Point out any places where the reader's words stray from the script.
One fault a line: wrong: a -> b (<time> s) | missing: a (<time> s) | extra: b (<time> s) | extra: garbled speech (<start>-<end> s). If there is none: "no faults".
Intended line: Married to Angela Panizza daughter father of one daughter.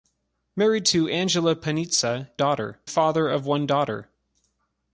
no faults